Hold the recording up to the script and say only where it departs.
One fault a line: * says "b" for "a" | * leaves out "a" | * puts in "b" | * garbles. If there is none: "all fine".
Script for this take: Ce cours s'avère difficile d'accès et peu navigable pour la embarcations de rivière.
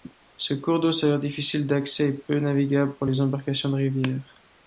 * puts in "d'eau"
* says "les" for "la"